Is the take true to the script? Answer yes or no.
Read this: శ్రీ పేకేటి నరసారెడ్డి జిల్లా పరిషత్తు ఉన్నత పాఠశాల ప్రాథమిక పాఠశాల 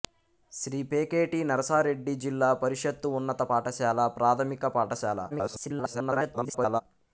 no